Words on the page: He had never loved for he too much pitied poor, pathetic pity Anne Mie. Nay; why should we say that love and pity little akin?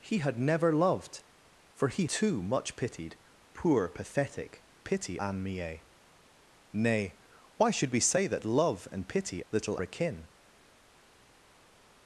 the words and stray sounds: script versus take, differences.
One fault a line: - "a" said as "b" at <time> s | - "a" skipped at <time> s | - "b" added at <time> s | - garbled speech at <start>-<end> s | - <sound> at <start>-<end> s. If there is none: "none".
none